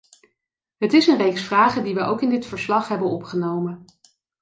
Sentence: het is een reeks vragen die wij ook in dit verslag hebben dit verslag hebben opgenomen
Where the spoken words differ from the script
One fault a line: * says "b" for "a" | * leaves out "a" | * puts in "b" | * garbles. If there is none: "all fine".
* leaves out "dit verslag hebben"